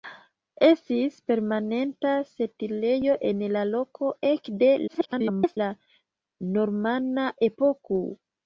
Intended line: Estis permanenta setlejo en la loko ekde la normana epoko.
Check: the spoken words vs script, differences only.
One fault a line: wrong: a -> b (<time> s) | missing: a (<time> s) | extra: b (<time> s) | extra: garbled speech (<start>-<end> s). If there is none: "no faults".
extra: garbled speech (4.9-5.6 s)